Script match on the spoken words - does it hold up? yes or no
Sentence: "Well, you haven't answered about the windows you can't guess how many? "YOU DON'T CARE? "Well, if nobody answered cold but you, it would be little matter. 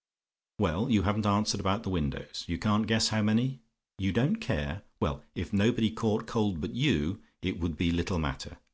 no